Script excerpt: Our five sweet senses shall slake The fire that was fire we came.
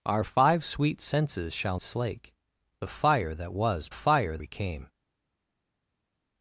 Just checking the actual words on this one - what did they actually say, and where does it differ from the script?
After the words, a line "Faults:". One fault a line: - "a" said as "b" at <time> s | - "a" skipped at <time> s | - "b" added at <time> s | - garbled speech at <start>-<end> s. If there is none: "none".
Our five sweet senses shall slake The fire that was fire we came.
Faults:
none